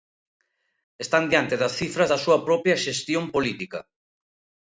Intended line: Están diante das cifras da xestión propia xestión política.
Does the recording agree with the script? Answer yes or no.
no